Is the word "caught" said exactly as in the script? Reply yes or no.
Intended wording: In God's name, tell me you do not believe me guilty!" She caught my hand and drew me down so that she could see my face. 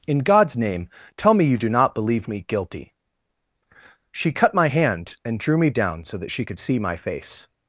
no